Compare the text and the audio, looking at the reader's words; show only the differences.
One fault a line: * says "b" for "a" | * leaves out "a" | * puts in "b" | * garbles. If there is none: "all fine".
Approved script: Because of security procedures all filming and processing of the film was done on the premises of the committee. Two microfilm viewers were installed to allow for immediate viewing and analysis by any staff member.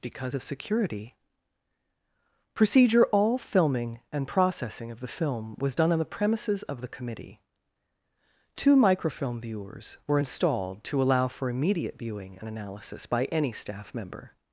* says "procedure" for "procedures"